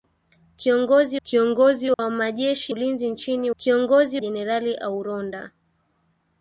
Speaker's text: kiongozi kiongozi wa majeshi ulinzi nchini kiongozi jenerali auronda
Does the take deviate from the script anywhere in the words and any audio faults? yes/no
yes